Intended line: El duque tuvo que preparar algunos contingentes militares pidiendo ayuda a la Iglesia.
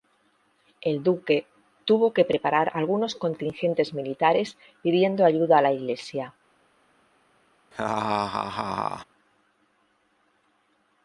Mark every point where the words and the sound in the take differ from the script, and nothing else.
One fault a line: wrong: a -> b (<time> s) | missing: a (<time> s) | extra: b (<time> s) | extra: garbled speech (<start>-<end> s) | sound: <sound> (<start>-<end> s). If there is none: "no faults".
sound: laugh (7.7-9.0 s)